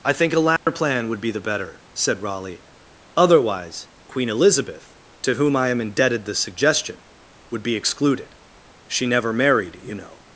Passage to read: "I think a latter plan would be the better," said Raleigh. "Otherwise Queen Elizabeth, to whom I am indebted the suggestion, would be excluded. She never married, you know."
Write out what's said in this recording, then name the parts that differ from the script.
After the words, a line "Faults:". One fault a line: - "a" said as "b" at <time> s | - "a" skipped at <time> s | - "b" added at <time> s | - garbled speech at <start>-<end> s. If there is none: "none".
"I think a latter plan would be the better," said Raleigh. "Otherwise Queen Elizabeth, to whom I am indebted the suggestion, would be excluded. She never married, you know."
Faults:
none